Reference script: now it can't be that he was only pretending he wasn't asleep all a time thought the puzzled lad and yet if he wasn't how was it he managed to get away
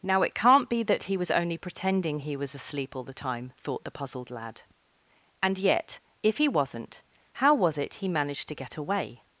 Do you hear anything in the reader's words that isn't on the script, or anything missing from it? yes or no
yes